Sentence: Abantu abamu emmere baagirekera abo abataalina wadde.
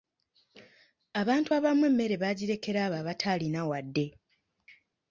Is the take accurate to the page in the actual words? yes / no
yes